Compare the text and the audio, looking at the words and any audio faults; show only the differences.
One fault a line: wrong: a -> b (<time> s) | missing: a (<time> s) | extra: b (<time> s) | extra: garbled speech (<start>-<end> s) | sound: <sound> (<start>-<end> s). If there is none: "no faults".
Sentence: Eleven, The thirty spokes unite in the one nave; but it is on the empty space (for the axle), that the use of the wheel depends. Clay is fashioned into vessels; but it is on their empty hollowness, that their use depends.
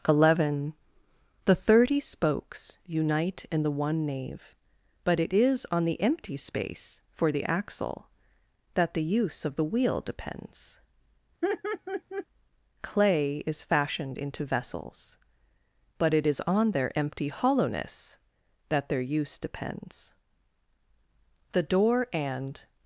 sound: laugh (11.4-12.3 s)
extra: The door and (21.5 s)